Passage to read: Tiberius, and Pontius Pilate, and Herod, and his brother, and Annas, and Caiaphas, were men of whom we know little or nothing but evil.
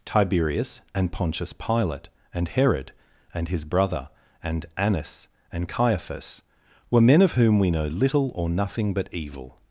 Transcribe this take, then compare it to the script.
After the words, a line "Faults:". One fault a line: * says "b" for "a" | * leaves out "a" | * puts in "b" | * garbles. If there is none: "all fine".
Tiberius, and Pontius Pilate, and Herod, and his brother, and Annas, and Caiaphas, were men of whom we know little or nothing but evil.
Faults:
all fine